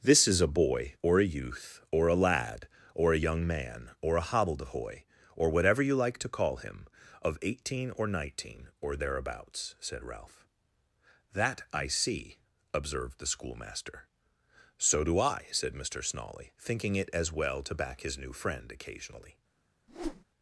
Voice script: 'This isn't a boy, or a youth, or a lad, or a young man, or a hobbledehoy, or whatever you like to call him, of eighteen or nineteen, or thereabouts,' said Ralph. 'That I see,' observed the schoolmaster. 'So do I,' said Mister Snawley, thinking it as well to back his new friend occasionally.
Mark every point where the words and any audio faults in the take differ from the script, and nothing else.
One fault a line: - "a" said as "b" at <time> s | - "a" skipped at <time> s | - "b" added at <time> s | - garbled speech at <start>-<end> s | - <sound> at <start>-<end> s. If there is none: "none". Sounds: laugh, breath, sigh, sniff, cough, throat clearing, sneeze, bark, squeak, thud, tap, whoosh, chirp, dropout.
- "isn't" said as "is" at 0.3 s
- whoosh at 19.9-20.2 s